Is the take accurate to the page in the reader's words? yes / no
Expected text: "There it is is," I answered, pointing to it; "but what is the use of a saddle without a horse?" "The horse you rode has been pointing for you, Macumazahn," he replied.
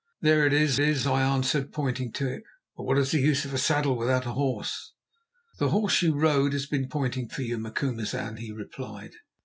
yes